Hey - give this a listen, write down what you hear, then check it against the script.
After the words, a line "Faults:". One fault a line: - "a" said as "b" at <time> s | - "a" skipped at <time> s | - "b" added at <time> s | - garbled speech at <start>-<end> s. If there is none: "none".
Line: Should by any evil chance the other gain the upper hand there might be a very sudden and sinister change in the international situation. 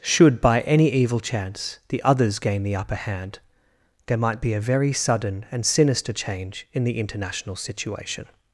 Should by any evil chance the others gain the upper hand there might be a very sudden and sinister change in the international situation.
Faults:
- "other" said as "others" at 2.0 s